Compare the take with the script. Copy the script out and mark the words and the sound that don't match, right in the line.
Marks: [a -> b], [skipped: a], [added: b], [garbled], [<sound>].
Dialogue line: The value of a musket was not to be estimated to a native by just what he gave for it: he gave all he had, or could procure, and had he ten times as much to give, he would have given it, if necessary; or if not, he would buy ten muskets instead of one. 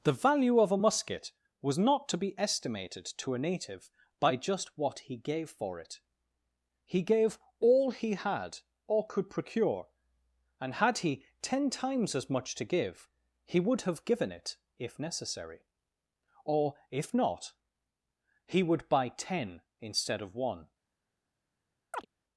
The value of a musket was not to be estimated to a native by just what he gave for it: he gave all he had, or could procure, and had he ten times as much to give, he would have given it, if necessary; or if not, he would buy ten [skipped: muskets] instead of one. [chirp]